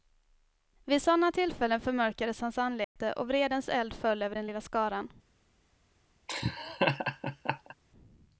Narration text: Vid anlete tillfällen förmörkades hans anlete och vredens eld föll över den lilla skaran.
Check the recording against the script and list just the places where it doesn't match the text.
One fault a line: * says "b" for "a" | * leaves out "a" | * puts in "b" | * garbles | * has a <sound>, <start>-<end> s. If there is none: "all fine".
* says "sådana" for "anlete"
* has a dropout, 2.8-3.0 s
* has a laugh, 6.3-7.7 s